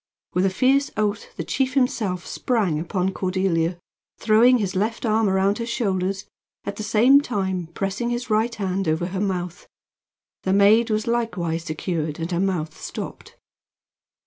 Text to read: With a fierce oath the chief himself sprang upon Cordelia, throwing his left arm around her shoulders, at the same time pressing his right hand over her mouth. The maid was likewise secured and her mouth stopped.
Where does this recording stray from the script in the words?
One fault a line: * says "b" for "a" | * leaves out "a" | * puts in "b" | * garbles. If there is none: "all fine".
all fine